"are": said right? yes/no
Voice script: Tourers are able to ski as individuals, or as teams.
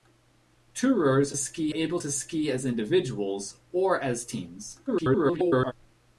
no